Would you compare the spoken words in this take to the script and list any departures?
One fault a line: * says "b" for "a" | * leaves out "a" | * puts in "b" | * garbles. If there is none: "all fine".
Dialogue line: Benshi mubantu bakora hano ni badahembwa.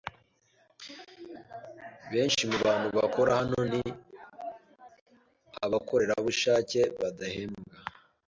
* puts in "abakorerabushake"